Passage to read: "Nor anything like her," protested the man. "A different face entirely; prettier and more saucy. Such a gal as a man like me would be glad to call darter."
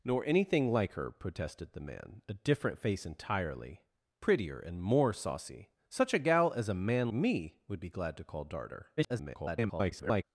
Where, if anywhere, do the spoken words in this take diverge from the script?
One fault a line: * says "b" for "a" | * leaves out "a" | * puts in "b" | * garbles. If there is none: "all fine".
* leaves out "like"
* garbles